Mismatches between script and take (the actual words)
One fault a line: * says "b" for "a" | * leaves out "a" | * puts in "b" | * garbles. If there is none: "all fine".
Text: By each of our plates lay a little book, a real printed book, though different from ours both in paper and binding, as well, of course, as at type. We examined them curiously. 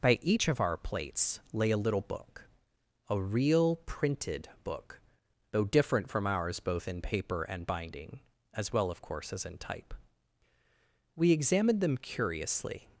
* says "in" for "at"